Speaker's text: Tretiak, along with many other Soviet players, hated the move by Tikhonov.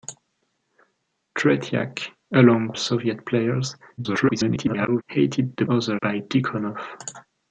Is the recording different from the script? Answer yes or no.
yes